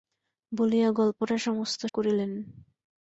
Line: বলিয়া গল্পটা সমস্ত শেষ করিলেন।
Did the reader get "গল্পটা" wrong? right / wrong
right